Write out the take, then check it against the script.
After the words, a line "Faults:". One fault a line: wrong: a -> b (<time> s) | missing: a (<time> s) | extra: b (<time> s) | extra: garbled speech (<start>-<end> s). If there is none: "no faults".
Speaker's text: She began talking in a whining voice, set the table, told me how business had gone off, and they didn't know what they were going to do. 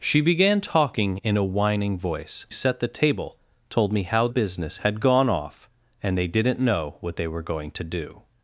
She began talking in a whining voice, set the table, told me how business had gone off, and they didn't know what they were going to do.
Faults:
no faults